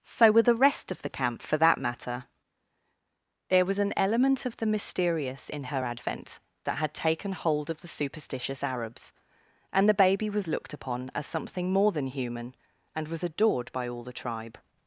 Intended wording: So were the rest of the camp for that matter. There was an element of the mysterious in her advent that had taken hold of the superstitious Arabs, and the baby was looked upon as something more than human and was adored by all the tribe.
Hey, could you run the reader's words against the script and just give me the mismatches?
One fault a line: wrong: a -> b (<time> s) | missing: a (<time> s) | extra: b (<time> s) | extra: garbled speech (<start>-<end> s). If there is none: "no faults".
no faults